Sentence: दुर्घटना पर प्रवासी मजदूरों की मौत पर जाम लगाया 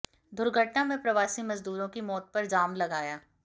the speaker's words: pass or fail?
fail